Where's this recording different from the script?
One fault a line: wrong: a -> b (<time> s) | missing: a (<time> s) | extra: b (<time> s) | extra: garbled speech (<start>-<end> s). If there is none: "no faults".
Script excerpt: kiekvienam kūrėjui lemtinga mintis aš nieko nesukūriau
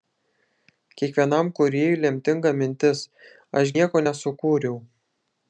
no faults